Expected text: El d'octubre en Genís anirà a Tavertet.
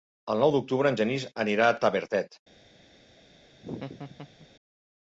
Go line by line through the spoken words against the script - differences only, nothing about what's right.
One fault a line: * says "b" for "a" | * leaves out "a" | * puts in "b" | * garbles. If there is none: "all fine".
* puts in "nou"